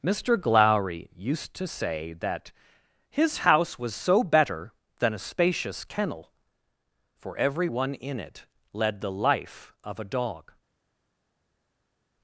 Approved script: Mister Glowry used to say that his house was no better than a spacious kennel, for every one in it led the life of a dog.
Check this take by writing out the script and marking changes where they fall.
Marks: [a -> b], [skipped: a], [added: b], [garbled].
Mister Glowry used to say that his house was [no -> so] better than a spacious kennel, for every one in it led the life of a dog.